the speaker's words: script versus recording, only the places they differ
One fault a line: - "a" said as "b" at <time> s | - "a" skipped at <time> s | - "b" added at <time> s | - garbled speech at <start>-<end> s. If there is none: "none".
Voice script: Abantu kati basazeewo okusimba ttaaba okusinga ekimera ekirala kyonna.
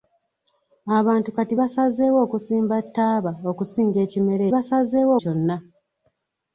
- "ekirala" said as "basazeewo" at 4.5 s